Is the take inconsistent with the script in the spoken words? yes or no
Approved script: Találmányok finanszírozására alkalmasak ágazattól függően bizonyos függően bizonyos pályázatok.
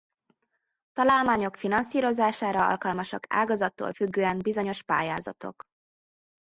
yes